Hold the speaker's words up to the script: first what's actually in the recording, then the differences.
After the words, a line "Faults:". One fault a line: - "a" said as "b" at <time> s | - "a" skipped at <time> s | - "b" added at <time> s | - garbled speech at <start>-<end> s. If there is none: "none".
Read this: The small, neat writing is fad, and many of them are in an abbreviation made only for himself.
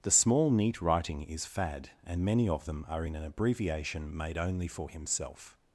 The small, neat writing is fad, and many of them are in an abbreviation made only for himself.
Faults:
none